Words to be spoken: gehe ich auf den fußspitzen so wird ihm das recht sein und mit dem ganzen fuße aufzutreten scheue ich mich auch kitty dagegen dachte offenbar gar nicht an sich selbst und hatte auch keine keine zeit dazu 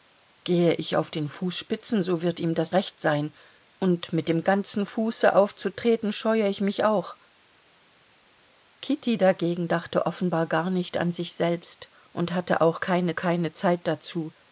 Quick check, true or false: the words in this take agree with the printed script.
true